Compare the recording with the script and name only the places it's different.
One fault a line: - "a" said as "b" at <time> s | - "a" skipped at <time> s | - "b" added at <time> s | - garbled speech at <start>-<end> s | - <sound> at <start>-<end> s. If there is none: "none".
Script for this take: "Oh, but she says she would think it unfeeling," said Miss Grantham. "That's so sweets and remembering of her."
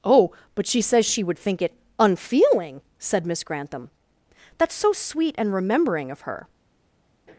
- "sweets" said as "sweet" at 4.9 s